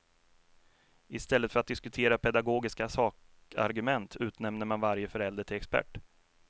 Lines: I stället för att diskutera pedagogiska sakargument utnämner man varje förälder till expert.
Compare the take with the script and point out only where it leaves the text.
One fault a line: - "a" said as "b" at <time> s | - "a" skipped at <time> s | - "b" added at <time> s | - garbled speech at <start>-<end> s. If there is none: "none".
none